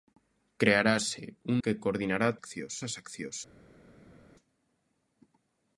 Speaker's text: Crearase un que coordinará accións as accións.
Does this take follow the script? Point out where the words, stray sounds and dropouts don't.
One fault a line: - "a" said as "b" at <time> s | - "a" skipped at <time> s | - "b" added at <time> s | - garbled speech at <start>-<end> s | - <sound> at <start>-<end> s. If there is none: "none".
none